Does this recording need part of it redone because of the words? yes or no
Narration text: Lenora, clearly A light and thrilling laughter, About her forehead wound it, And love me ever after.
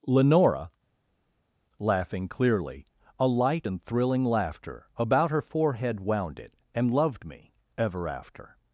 yes